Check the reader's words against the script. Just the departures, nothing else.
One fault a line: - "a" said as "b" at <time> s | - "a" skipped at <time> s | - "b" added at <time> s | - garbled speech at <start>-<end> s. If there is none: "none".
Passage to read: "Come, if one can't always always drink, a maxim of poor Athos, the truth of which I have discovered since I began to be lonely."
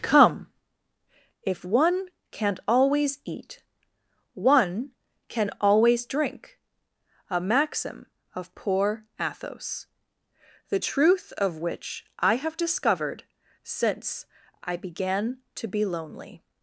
- "eat one can" added at 3.2 s